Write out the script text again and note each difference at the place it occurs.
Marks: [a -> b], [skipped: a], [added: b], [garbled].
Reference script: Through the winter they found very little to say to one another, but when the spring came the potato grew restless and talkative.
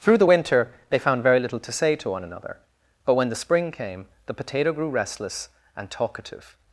Through the winter they found very little to say to one another, but when the spring came the potato grew restless and talkative.